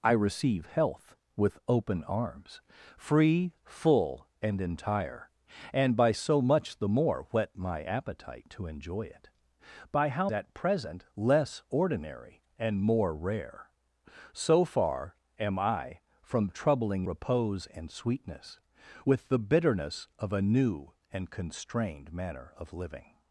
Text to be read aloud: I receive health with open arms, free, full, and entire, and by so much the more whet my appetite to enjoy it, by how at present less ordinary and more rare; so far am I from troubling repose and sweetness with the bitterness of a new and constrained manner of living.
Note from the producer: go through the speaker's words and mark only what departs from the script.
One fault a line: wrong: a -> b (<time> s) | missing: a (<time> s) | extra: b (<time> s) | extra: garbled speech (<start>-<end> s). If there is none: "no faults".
no faults